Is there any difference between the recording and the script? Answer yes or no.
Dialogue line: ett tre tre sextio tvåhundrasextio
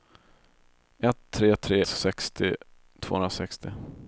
no